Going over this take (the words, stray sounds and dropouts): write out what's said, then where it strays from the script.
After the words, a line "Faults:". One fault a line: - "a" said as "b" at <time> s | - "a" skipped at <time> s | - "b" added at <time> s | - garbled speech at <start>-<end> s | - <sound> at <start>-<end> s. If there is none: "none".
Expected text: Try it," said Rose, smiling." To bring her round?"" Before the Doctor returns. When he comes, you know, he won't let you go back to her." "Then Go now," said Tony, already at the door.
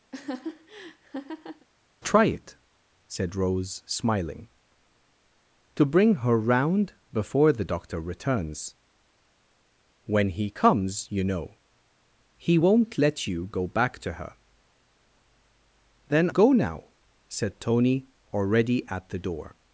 Try it," said Rose, smiling." To bring her round?"" Before the Doctor returns. When he comes, you know, he won't let you go back to her." "Then Go now," said Tony, already at the door.
Faults:
- laugh at 0.1-1.7 s